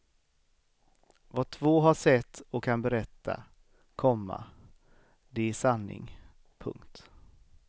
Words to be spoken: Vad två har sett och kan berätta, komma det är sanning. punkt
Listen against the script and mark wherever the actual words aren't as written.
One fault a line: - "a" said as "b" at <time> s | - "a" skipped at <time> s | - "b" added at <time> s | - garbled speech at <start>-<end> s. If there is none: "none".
none